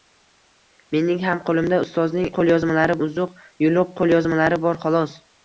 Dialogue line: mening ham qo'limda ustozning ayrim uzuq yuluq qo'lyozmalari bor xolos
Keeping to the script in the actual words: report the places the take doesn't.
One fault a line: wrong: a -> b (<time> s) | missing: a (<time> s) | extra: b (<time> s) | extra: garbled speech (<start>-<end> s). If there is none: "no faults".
wrong: ayrim -> qo'lyozmalari (2.4 s)